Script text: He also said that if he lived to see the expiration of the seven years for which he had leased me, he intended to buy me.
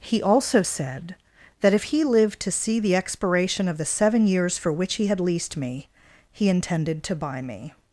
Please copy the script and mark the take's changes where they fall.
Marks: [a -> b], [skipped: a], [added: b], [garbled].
He also said that if he lived to see the expiration of the seven years for which he had leased me, he intended to buy me.